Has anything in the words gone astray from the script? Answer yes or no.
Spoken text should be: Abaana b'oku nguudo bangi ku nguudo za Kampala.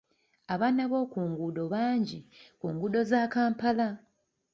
no